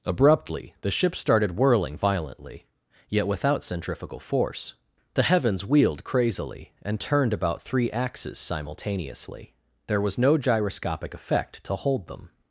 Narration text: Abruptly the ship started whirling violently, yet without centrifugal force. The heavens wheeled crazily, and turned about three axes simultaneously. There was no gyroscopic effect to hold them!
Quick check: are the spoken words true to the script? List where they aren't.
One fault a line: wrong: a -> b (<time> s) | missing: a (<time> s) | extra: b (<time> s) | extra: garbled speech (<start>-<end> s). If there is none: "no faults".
no faults